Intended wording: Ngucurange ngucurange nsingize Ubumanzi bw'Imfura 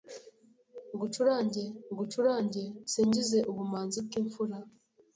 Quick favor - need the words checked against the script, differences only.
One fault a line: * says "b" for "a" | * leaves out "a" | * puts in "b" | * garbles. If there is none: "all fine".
all fine